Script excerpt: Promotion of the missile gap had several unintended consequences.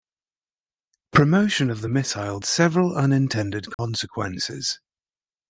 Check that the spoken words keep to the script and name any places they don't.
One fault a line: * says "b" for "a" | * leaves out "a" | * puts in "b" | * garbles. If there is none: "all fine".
* leaves out "gap had"